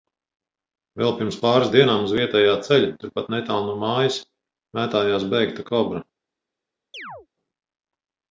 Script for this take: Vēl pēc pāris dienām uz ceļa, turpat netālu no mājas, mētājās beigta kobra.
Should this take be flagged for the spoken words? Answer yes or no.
yes